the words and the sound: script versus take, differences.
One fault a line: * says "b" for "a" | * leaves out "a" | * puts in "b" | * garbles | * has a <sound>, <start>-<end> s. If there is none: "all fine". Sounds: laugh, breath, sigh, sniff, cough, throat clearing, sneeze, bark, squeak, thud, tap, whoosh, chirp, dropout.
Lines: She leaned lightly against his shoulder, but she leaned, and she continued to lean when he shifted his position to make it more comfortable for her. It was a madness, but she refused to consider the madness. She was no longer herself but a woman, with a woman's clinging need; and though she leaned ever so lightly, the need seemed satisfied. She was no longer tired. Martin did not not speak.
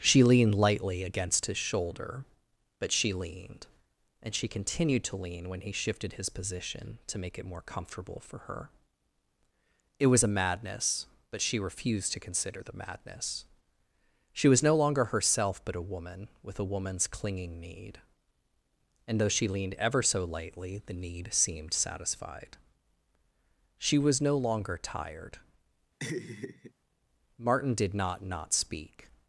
* has a laugh, 26.0-26.7 s